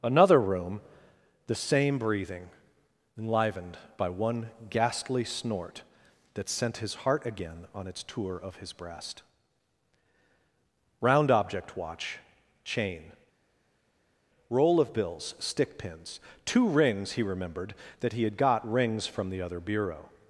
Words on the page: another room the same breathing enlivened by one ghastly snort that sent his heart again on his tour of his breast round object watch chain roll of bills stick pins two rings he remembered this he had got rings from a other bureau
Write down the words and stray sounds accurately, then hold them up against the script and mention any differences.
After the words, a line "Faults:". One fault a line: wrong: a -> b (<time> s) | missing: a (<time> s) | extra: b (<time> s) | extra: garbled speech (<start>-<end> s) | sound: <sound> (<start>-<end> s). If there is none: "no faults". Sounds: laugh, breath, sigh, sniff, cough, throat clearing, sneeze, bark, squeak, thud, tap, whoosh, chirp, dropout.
another room the same breathing enlivened by one ghastly snort that sent his heart again on its tour of his breast round object watch chain roll of bills stick pins two rings he remembered that he had got rings from the other bureau
Faults:
wrong: his -> its (7.8 s)
wrong: this -> that (18.0 s)
wrong: a -> the (19.3 s)